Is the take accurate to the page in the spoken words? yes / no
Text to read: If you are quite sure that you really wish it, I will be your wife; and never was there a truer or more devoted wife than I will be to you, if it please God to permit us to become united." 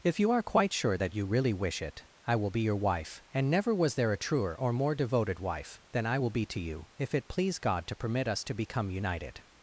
yes